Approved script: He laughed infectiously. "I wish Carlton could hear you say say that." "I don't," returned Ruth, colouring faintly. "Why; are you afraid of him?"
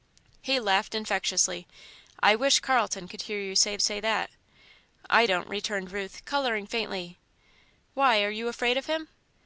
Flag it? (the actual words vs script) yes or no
no